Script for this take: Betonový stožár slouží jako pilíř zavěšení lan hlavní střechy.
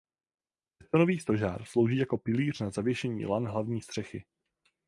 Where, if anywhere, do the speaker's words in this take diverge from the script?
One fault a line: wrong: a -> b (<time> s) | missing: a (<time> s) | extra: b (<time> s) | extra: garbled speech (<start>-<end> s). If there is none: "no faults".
extra: na (2.6 s)